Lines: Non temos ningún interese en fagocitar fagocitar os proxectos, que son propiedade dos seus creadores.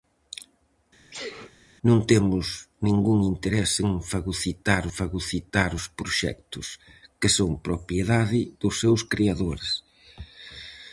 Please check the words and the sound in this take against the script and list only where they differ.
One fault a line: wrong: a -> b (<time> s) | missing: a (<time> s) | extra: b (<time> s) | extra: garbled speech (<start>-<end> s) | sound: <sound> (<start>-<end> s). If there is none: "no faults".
sound: sneeze (1.1-1.5 s)